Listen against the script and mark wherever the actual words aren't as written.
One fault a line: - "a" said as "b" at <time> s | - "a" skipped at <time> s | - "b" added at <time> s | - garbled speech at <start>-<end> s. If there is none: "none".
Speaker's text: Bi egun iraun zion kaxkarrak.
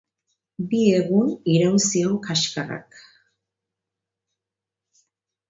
none